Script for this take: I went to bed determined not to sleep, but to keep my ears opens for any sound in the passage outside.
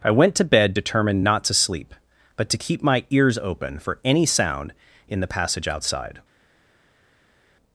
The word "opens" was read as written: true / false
false